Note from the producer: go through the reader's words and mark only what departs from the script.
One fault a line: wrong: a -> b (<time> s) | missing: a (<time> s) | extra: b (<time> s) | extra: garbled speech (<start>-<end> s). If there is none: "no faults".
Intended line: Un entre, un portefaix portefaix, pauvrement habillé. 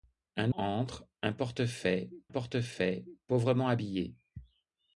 no faults